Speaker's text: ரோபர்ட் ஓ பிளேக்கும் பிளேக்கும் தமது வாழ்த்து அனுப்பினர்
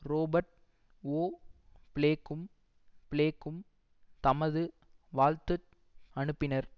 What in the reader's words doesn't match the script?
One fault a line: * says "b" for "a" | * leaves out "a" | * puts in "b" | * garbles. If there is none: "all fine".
all fine